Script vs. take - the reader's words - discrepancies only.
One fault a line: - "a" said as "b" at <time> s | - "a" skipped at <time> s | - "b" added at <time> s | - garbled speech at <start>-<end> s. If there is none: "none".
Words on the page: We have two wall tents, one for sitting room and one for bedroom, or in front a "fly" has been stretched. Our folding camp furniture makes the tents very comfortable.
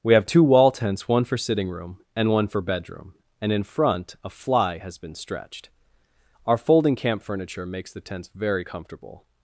- "or" said as "and" at 3.4 s